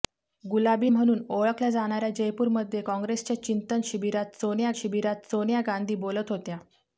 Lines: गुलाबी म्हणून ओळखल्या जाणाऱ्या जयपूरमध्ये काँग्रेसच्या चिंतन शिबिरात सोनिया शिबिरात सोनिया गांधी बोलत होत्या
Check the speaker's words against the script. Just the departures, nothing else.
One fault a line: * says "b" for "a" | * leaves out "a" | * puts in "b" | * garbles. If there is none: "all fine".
all fine